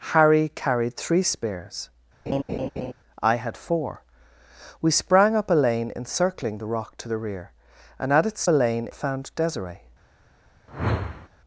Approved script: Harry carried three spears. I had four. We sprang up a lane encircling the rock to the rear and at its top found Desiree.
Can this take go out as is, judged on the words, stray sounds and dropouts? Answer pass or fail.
fail